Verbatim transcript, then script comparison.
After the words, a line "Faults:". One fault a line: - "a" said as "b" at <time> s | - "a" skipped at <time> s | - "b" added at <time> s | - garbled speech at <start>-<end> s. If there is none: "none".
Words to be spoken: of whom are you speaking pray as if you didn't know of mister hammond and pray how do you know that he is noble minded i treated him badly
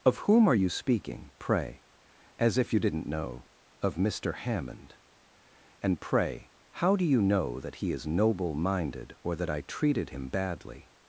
of whom are you speaking pray as if you didn't know of mister hammond and pray how do you know that he is noble minded or that i treated him badly
Faults:
- "or that" added at 9.2 s